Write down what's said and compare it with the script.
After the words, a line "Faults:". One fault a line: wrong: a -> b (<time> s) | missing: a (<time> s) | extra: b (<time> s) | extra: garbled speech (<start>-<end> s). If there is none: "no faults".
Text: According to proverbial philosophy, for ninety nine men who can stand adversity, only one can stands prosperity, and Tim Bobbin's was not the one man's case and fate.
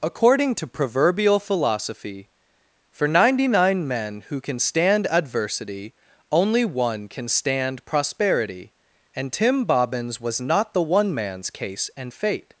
According to proverbial philosophy, for ninety nine men who can stand adversity, only one can stand prosperity, and Tim Bobbin's was not the one man's case and fate.
Faults:
wrong: stands -> stand (7.3 s)